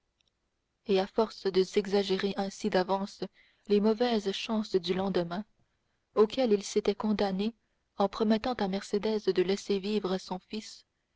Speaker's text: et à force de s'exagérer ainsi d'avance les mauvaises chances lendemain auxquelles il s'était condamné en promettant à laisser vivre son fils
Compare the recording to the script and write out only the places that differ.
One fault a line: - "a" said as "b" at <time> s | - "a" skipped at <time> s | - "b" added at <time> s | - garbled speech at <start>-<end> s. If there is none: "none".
- "du" added at 4.8 s
- "mercédès de" added at 8.7 s